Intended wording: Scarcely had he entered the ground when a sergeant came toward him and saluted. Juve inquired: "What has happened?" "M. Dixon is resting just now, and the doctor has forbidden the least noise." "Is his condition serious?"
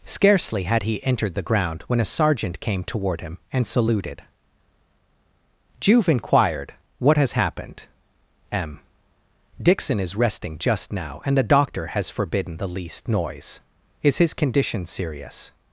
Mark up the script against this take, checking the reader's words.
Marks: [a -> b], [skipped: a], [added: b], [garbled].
Scarcely had he entered the ground when a sergeant came toward him and saluted. Juve inquired: "What has happened?" "M. Dixon is resting just now, and the doctor has forbidden the least noise." "Is his condition serious?"